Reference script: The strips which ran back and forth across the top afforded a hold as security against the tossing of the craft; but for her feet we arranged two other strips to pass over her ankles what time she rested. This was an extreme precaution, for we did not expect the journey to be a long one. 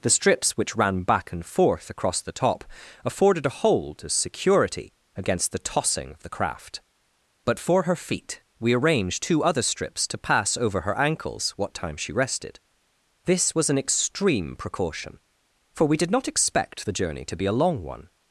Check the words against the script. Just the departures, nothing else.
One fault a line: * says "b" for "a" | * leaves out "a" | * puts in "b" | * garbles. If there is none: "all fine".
all fine